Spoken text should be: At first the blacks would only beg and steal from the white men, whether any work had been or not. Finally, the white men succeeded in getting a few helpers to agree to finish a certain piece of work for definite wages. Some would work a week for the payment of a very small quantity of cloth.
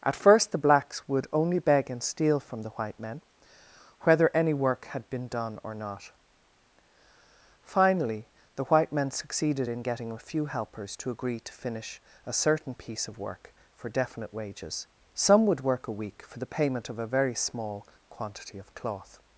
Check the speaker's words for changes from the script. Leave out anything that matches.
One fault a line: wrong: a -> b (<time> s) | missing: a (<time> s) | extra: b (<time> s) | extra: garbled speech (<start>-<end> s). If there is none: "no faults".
extra: done (5.3 s)